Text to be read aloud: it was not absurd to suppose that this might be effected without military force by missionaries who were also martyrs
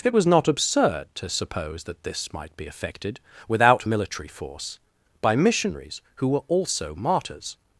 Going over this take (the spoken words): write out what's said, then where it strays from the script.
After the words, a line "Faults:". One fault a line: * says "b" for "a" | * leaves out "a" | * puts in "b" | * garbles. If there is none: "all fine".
it was not absurd to suppose that this might be effected without military force by missionaries who were also martyrs
Faults:
all fine